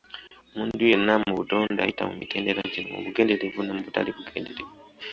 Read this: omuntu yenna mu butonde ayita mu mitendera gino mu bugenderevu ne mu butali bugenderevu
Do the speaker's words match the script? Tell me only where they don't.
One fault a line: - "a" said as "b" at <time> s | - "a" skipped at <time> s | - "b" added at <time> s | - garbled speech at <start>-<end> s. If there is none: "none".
none